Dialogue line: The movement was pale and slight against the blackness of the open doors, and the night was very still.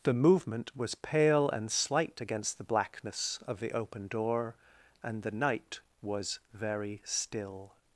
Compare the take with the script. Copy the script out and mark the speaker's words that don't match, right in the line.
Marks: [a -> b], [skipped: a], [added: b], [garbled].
The movement was pale and slight against the blackness of the open [doors, -> door] and the night was very still.